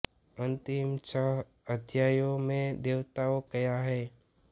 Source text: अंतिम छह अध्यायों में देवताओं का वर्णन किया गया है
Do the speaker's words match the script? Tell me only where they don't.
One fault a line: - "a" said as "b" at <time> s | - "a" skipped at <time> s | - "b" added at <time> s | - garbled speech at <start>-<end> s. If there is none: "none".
- "का वर्णन किया" skipped at 3.4 s